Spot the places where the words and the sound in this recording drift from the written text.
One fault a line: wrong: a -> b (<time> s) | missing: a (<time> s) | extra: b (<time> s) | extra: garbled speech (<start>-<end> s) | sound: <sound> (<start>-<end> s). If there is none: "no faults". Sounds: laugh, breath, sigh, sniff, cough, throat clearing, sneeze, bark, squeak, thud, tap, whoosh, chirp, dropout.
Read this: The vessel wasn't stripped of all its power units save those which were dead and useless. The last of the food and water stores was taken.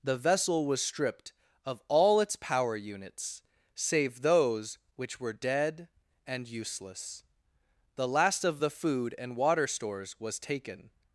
wrong: wasn't -> was (0.7 s)